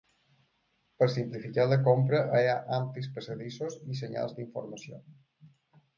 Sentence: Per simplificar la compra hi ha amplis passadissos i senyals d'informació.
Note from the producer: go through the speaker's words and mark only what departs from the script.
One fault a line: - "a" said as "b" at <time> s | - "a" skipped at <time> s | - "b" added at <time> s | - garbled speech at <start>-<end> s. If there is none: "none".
none